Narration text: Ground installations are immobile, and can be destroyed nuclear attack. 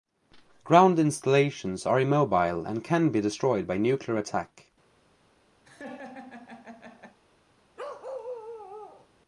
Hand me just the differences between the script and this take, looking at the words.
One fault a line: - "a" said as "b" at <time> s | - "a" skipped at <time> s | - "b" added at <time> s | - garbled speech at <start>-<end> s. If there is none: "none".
- "by" added at 3.7 s